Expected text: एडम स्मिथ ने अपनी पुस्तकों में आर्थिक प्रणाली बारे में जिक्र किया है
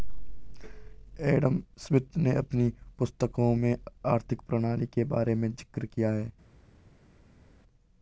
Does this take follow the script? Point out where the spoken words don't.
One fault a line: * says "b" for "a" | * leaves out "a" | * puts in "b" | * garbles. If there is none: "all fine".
* puts in "के"